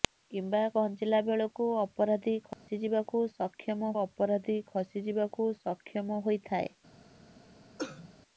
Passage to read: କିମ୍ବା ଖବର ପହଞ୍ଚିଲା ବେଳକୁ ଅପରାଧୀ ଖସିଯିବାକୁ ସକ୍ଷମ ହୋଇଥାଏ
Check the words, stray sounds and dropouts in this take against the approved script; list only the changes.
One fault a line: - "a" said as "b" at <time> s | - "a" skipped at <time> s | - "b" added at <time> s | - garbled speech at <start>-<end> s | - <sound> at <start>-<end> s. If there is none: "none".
- "ଖବର" skipped at 0.6 s
- dropout at 2.5-2.7 s
- "ଅପରାଧୀ ଖସିଯିବାକୁ ସକ୍ଷମ" added at 4.0 s
- cough at 7.8-8.1 s